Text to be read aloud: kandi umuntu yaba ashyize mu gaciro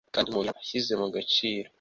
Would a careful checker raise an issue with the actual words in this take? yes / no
yes